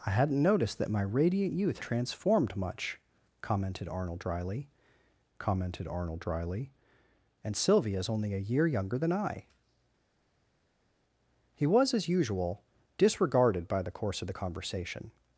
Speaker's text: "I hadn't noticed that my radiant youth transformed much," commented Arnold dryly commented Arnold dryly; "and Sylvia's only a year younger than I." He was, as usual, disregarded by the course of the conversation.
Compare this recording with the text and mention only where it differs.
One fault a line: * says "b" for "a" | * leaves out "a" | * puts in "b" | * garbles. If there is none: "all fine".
all fine